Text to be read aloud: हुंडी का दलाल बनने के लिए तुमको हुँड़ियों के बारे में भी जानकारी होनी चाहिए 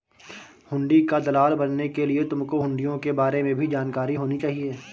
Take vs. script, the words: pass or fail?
pass